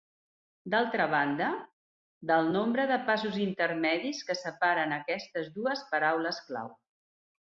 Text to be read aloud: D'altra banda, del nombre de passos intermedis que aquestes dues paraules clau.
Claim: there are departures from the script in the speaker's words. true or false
true